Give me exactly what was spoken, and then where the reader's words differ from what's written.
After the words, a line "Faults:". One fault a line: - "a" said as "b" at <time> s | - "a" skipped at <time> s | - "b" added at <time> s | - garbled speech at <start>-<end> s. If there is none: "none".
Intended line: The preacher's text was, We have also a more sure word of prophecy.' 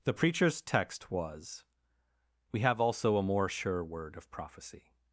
The preacher's text was, We have also a more sure word of prophecy.'
Faults:
none